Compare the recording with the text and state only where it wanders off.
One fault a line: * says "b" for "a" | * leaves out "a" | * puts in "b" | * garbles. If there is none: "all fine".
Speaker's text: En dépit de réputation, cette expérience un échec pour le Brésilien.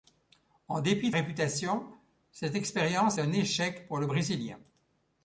all fine